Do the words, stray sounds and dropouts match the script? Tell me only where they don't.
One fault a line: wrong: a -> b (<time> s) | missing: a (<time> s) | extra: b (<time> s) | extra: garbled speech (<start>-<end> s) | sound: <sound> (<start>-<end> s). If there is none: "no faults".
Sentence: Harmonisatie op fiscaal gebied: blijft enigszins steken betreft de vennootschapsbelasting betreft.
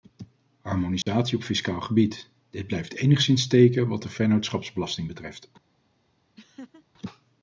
sound: dropout (1.0-1.1 s)
extra: dit (2.5 s)
wrong: betreft -> wat (3.9 s)
sound: laugh (6.4-6.8 s)